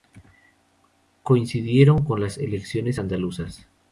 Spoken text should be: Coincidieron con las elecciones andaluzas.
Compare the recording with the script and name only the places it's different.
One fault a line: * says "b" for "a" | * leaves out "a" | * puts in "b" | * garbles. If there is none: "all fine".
all fine